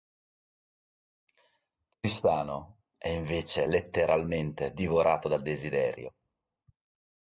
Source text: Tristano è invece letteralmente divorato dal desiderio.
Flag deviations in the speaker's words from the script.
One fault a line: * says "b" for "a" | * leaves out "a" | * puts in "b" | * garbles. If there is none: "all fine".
all fine